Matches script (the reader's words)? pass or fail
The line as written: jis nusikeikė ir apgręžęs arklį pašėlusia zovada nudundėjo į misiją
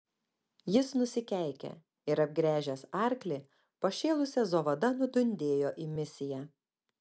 pass